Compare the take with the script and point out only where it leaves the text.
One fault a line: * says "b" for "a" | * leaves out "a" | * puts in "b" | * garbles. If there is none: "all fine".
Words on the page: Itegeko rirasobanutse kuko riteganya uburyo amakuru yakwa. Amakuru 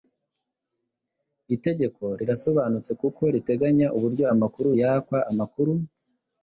all fine